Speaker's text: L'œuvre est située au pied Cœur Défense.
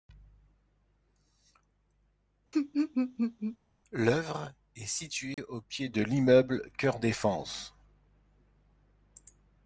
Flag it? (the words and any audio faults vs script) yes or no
yes